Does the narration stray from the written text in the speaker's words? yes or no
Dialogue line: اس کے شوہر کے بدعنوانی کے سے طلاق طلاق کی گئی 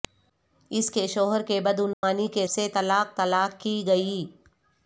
no